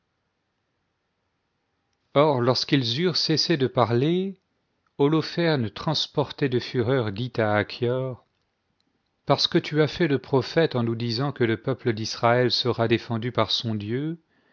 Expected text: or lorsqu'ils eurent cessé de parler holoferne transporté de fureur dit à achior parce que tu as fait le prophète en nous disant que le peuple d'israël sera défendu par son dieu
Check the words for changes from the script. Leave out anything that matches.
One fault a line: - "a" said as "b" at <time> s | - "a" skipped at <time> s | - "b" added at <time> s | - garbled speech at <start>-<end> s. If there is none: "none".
none